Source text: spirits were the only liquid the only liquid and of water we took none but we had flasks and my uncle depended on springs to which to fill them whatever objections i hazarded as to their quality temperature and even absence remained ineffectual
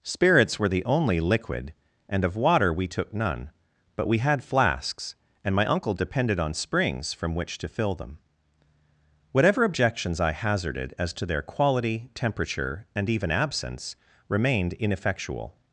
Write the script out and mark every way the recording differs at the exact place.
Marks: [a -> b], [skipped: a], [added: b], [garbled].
spirits were the only liquid [skipped: the only liquid] and of water we took none but we had flasks and my uncle depended on springs [to -> from] which to fill them whatever objections i hazarded as to their quality temperature and even absence remained ineffectual